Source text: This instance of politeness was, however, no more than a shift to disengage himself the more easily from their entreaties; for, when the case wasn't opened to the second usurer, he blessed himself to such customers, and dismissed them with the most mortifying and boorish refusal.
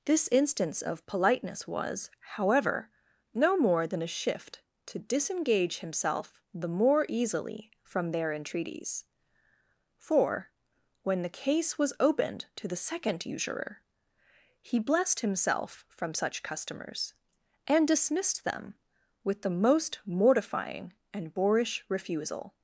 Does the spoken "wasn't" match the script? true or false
false